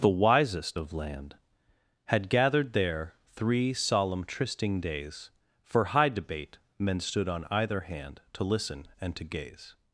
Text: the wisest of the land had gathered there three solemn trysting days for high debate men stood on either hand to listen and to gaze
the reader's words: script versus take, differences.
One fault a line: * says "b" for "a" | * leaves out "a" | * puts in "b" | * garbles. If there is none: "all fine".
* leaves out "the"